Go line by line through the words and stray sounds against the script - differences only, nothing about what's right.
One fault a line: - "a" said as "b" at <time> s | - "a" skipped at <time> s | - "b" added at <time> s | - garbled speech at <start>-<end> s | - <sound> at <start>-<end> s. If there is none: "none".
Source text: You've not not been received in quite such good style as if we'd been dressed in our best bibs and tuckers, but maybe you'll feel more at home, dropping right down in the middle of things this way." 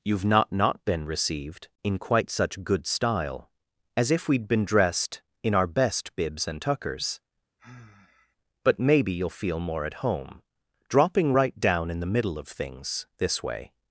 - sigh at 7.6-8.4 s